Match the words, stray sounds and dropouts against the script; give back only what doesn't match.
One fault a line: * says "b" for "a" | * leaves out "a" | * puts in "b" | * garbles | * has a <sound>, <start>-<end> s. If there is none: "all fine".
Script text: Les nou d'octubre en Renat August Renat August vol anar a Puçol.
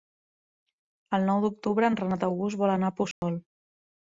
* says "El" for "Les"
* leaves out "Renat August"
* has a dropout, 3.1-3.2 s